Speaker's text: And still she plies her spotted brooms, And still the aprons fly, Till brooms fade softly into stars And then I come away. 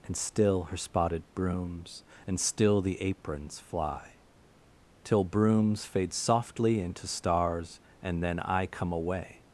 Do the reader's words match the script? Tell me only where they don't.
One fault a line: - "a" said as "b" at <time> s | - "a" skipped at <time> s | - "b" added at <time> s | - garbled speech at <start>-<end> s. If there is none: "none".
- "she plies" skipped at 0.7 s